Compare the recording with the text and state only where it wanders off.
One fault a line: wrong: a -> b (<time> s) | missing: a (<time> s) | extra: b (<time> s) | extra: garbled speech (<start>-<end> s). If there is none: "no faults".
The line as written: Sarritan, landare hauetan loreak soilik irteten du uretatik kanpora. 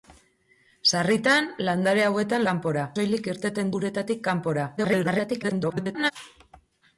wrong: loreak -> kanpora (2.5 s)
missing: du (3.8 s)
extra: garbled speech (4.8-6.1 s)